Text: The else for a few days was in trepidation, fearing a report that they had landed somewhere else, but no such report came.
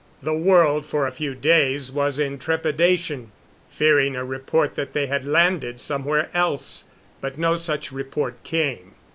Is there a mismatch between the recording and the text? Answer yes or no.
yes